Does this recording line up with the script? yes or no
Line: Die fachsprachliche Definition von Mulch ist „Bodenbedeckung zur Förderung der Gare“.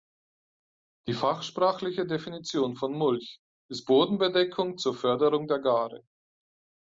yes